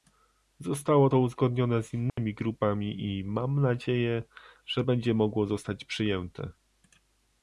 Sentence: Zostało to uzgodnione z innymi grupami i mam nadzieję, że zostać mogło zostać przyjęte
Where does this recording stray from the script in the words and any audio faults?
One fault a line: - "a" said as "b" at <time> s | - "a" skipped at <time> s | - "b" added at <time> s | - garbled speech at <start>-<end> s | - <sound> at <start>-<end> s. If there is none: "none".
- dropout at 2.1-2.2 s
- "zostać" said as "będzie" at 4.8 s